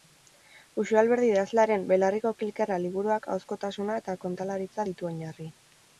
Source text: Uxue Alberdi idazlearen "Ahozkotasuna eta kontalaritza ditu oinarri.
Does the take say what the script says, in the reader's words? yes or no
no